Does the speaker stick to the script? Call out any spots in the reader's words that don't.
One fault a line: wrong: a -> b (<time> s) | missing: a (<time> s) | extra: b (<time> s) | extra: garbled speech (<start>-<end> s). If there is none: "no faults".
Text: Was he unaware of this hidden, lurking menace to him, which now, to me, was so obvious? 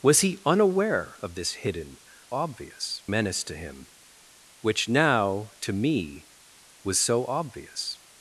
wrong: lurking -> obvious (2.3 s)